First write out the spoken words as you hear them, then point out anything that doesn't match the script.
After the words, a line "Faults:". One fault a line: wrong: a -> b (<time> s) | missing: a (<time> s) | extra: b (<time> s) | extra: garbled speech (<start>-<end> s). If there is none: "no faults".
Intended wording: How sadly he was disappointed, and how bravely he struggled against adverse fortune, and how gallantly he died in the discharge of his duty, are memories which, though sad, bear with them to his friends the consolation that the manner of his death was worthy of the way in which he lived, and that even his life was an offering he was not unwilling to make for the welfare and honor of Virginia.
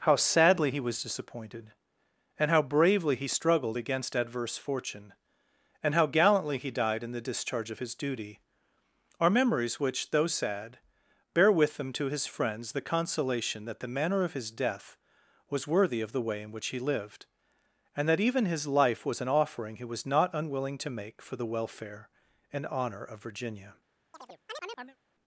How sadly he was disappointed, and how bravely he struggled against adverse fortune, and how gallantly he died in the discharge of his duty, are memories which, though sad, bear with them to his friends the consolation that the manner of his death was worthy of the way in which he lived, and that even his life was an offering he was not unwilling to make for the welfare and honor of Virginia.
Faults:
no faults